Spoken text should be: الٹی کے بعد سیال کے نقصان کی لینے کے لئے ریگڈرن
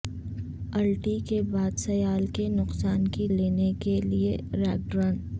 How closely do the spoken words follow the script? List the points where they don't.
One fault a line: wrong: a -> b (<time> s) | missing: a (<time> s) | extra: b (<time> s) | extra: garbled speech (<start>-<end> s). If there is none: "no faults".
no faults